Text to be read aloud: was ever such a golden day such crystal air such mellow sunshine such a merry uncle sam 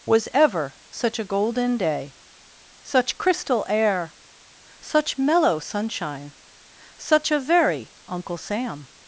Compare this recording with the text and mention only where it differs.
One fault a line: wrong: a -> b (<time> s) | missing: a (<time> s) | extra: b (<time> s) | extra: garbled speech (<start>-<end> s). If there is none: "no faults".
wrong: merry -> very (7.4 s)